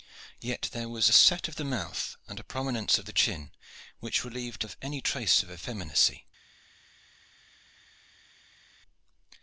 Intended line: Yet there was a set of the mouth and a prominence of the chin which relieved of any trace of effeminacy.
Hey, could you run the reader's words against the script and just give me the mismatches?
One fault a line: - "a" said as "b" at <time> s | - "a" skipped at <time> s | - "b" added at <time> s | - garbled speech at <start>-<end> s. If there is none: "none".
none